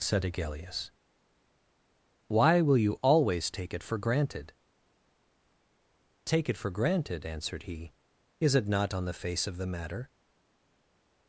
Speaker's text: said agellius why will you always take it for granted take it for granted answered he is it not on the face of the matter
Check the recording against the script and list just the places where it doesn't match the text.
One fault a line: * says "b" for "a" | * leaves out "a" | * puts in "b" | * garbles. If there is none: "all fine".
all fine